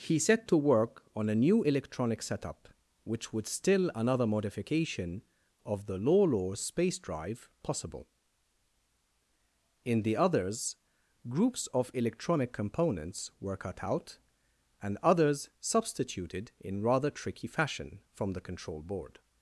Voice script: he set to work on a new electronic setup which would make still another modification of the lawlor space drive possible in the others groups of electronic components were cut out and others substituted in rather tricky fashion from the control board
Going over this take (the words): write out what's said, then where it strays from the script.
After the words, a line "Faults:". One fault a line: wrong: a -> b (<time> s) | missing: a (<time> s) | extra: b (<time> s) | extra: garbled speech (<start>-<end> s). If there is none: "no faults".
he set to work on a new electronic setup which would still another modification of the lawlor space drive possible in the others groups of electronic components were cut out and others substituted in rather tricky fashion from the control board
Faults:
missing: make (3.5 s)